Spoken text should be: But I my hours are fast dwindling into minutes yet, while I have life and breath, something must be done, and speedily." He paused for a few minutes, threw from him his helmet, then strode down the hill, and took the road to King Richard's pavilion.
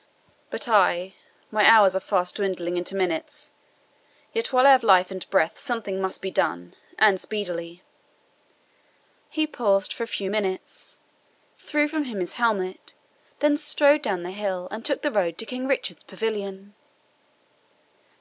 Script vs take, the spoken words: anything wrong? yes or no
no